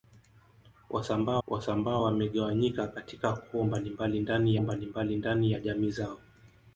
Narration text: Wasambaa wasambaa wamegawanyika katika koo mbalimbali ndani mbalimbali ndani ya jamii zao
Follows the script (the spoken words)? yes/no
yes